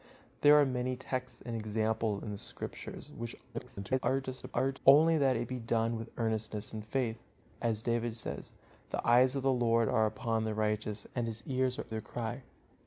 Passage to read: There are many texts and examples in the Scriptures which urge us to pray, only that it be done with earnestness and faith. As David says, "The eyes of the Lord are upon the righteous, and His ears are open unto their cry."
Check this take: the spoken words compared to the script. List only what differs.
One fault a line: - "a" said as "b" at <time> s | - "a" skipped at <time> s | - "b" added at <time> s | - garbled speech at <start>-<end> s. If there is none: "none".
- garbled speech at 3.5-4.0 s
- "pray" said as "urge" at 4.5 s
- "open unto" skipped at 11.9 s